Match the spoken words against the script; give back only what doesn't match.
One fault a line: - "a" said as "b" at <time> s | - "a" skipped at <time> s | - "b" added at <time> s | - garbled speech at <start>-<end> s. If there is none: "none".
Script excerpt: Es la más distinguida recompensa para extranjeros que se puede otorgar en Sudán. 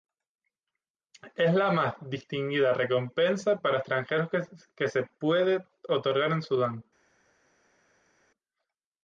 none